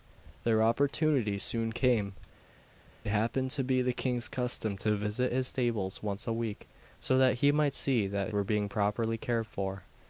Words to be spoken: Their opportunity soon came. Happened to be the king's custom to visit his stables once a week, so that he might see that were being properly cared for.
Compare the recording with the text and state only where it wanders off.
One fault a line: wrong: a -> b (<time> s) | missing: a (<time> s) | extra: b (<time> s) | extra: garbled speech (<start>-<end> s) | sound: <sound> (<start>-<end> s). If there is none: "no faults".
no faults